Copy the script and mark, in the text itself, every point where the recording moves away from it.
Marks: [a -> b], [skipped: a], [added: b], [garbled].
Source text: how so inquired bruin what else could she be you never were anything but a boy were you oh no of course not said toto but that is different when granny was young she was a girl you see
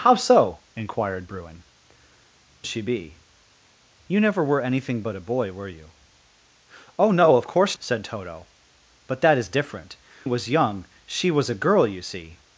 how so inquired bruin [skipped: what else could] she be you never were anything but a boy were you oh no of course [skipped: not] said toto but that is different [skipped: when granny] was young she was a girl you see